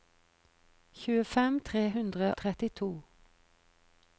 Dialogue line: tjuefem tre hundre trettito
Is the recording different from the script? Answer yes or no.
no